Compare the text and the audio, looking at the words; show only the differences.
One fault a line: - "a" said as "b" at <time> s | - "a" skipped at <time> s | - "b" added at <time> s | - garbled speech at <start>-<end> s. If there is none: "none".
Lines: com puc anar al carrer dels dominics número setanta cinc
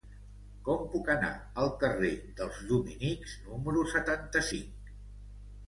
none